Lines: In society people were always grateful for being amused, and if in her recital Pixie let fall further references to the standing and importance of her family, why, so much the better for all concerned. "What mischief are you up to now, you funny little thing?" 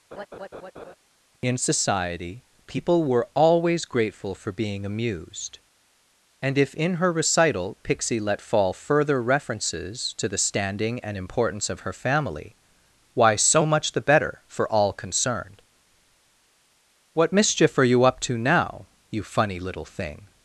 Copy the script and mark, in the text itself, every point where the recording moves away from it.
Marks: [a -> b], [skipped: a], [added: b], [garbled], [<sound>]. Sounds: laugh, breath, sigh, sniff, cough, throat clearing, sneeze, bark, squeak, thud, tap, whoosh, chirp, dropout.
[laugh] In society people were always grateful for being amused, and if in her recital Pixie let fall further references to the standing and importance of her family, why, so much the better for all concerned. "What mischief are you up to now, you funny little thing?"